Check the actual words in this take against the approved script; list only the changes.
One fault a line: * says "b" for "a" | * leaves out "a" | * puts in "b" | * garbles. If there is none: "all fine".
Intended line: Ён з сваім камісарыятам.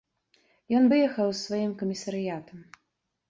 * puts in "выехаў"